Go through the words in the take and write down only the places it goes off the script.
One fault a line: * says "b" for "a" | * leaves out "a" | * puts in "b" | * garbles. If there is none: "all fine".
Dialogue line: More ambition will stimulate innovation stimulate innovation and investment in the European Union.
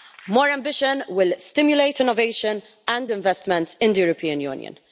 * leaves out "stimulate innovation"